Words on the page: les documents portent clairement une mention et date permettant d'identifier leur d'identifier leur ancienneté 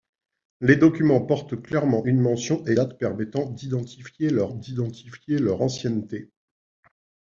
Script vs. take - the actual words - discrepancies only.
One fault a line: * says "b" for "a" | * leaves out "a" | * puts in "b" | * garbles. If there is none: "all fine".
all fine